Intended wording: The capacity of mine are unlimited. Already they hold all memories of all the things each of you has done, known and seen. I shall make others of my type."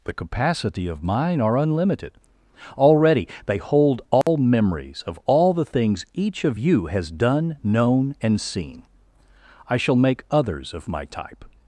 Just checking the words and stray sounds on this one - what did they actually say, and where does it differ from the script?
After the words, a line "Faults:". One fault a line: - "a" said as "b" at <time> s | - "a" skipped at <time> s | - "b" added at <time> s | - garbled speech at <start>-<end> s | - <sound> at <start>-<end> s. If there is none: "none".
The capacity of mine are unlimited. Already they hold all memories of all the things each of you has done, known and seen. I shall make others of my type."
Faults:
- dropout at 4.2-4.3 s